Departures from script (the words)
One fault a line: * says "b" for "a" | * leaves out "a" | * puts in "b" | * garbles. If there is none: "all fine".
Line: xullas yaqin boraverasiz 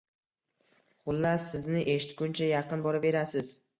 * puts in "sizni eshitguncha"